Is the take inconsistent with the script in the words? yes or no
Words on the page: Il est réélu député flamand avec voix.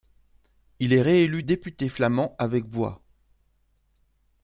no